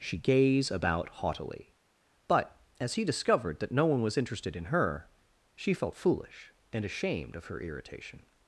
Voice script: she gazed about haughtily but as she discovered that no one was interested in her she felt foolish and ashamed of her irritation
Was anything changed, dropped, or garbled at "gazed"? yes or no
yes